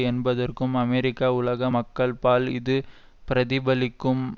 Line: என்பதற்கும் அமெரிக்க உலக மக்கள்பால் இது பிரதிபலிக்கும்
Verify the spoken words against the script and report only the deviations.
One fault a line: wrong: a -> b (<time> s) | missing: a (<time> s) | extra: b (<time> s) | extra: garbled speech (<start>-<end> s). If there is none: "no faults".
no faults